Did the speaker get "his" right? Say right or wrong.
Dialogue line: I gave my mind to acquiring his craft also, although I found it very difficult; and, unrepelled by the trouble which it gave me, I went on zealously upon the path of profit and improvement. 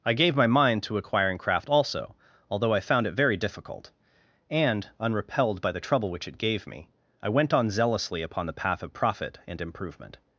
wrong